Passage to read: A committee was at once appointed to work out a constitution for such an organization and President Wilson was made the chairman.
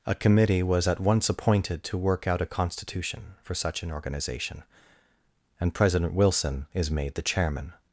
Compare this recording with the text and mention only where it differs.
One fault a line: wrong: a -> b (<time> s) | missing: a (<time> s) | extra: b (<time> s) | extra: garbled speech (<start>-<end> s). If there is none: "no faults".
wrong: was -> is (6.7 s)